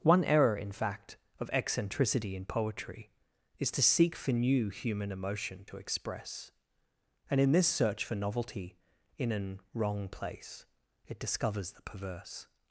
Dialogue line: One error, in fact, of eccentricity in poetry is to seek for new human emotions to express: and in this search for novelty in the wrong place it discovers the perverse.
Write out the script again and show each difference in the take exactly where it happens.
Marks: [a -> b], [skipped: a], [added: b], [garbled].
One error, in fact, of eccentricity in poetry is to seek for new human [emotions -> emotion] to express: and in this search for novelty in [the -> an] wrong place it discovers the perverse.